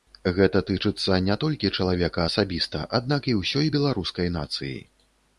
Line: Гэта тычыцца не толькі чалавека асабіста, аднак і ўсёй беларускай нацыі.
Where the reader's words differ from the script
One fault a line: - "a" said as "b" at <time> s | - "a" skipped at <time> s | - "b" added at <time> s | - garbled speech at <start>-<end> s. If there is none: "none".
none